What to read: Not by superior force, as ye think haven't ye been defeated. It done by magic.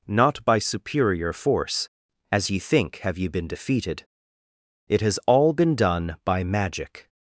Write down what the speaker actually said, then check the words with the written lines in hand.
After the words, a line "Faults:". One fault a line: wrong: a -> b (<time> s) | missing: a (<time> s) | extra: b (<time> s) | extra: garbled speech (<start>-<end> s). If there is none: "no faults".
Not by superior force, as ye think have ye been defeated. It has all been done by magic.
Faults:
wrong: haven't -> have (3.0 s)
extra: has all been (5.0 s)